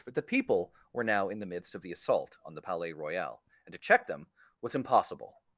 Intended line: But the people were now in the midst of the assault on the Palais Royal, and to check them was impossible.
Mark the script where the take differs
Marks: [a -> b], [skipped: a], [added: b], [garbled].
But the people were now in the midst of the assault on the Palais Royal, and to check them was impossible.